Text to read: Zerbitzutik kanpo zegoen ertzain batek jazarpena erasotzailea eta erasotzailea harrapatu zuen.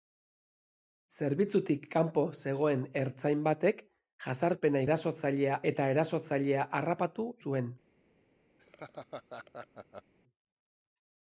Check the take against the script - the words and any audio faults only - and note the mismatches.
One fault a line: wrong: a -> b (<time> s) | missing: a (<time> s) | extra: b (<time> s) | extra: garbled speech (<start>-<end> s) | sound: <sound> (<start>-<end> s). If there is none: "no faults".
sound: laugh (8.6-10.1 s)